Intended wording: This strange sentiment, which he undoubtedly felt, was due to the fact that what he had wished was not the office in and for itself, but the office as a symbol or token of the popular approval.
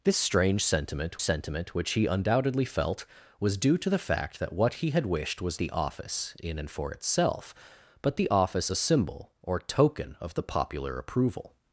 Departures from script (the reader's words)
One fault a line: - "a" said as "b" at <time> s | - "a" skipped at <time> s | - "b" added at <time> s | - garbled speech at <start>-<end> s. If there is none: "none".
- "sentiment" added at 1.2 s
- "not" skipped at 5.6 s
- "as" skipped at 8.7 s